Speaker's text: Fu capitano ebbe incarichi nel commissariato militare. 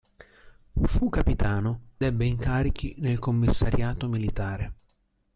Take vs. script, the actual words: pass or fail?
pass